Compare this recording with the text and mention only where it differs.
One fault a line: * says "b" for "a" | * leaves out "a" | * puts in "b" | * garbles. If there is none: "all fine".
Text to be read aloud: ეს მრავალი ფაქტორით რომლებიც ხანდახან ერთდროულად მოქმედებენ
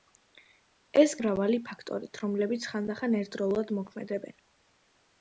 all fine